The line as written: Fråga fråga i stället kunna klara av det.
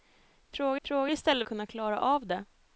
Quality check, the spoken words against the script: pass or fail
pass